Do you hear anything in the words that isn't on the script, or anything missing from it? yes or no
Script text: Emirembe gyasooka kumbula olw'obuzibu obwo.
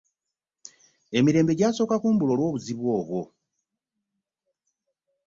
no